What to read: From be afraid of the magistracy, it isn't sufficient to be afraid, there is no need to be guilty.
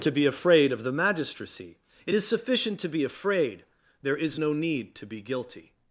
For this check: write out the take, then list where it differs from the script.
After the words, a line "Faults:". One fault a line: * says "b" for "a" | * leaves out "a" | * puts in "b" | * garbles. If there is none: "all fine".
To be afraid of the magistracy, it is sufficient to be afraid, there is no need to be guilty.
Faults:
* says "To" for "From"
* says "is" for "isn't"